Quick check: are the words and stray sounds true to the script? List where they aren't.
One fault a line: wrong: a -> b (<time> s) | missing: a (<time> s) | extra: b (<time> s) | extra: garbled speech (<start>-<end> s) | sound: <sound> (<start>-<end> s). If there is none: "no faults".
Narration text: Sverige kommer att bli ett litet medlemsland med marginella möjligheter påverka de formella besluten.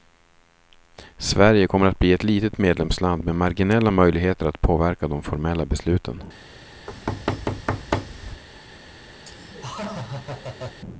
extra: att (4.5 s)
sound: thud (6.9-8.4 s)
sound: laugh (9.2-10.8 s)